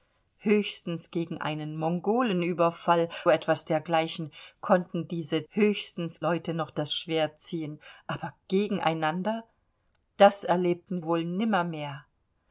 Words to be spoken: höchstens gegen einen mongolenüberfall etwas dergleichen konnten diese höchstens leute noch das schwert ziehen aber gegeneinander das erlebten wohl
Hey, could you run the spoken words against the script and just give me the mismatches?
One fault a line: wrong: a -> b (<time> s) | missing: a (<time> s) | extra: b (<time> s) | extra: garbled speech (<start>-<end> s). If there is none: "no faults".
no faults